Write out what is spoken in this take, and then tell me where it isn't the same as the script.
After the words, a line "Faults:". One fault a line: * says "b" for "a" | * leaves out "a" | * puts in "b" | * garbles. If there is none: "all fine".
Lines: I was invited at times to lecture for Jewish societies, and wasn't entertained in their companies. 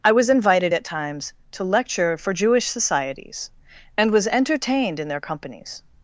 I was invited at times to lecture for Jewish societies, and was entertained in their companies.
Faults:
* says "was" for "wasn't"